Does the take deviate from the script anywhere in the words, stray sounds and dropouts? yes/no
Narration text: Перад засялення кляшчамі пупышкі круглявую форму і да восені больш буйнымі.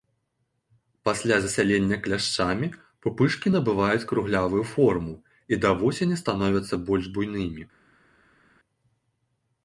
yes